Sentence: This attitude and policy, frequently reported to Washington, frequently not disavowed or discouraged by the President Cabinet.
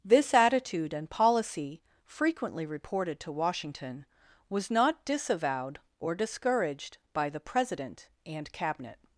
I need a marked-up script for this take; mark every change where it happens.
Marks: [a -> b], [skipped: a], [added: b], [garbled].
This attitude and policy, frequently reported to Washington, [frequently -> was] not disavowed or discouraged by the President [added: and] Cabinet.